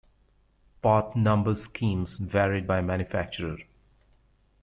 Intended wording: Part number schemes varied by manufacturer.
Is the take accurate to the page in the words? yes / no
yes